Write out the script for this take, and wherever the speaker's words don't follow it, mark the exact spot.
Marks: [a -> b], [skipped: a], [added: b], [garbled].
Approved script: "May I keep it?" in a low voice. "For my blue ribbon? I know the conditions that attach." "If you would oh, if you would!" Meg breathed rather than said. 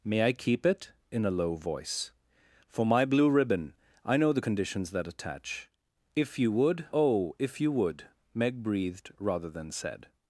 "May I keep it?" in a low voice. "For my blue ribbon? I know the conditions that attach." "If you would oh, if you would!" Meg breathed rather than said.